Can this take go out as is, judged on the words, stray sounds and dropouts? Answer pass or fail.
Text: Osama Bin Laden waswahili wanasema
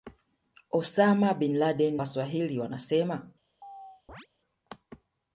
fail